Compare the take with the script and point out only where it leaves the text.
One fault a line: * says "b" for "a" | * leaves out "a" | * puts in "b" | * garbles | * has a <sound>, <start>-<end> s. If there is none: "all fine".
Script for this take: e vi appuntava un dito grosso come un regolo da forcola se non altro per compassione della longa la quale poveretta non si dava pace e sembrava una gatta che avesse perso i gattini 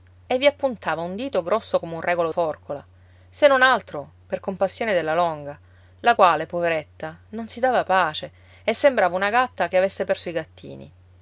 * leaves out "da"